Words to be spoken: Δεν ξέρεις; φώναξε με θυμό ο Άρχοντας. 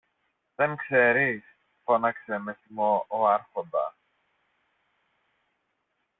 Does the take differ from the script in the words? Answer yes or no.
no